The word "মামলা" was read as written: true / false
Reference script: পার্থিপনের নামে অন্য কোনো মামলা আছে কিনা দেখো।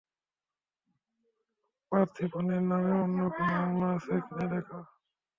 true